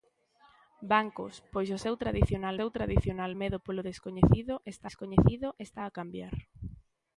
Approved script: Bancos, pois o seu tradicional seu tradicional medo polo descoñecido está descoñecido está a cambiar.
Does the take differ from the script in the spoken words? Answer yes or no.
no